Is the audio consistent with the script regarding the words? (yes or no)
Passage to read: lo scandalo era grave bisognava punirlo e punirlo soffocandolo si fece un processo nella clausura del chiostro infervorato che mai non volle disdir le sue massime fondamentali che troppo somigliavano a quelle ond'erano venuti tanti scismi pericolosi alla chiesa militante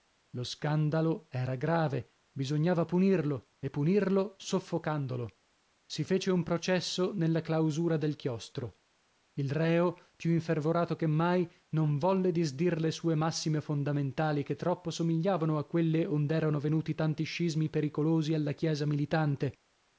no